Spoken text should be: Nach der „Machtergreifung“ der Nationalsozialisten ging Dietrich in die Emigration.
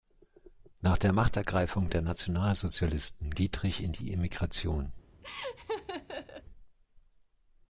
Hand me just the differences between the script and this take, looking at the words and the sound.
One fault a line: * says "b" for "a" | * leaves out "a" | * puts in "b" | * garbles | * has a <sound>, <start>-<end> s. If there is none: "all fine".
* leaves out "ging"
* has a laugh, 5.2-6.4 s